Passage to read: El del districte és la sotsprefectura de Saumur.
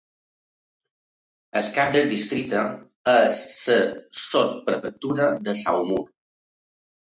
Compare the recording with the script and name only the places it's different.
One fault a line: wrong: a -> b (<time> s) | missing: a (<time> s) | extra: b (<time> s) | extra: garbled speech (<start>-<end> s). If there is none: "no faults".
extra: cap (1.8 s)